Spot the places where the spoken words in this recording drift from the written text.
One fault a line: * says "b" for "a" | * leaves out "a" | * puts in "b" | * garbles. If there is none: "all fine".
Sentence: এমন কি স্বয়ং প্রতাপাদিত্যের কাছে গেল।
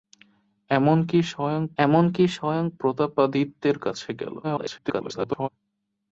* puts in "এমন কি স্বয়ং"
* garbles